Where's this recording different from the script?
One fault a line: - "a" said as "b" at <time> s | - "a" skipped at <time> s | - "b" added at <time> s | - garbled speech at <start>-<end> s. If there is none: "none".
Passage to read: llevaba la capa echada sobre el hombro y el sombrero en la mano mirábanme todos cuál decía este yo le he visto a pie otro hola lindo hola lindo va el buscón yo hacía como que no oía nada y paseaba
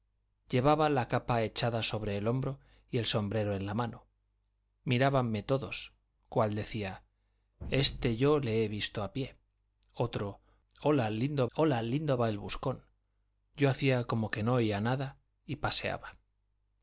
none